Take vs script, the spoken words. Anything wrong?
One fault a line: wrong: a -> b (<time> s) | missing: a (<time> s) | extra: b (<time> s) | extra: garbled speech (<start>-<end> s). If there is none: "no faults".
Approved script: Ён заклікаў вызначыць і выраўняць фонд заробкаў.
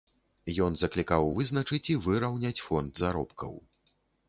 no faults